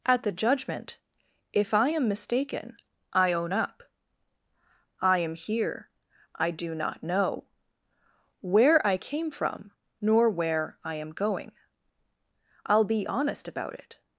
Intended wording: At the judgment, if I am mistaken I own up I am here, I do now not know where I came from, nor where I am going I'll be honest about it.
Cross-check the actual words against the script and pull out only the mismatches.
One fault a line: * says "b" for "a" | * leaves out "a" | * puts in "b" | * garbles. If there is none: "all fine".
* leaves out "now"